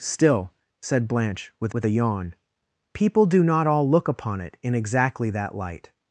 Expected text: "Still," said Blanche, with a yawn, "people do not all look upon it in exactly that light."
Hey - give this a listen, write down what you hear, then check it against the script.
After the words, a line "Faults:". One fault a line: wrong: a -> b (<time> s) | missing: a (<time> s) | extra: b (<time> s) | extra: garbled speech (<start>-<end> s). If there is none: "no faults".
"Still," said Blanche, with with a yawn, "people do not all look upon it in exactly that light."
Faults:
extra: with (1.7 s)